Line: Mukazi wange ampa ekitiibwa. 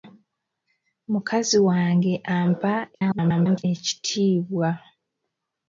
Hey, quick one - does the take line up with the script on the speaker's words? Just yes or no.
no